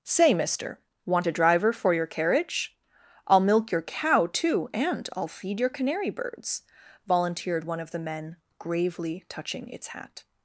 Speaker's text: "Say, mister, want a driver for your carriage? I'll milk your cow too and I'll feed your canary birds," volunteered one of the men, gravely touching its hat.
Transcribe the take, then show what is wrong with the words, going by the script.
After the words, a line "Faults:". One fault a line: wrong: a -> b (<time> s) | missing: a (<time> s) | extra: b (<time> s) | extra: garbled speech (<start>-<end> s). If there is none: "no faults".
"Say, mister, want a driver for your carriage? I'll milk your cow too and I'll feed your canary birds," volunteered one of the men, gravely touching its hat.
Faults:
no faults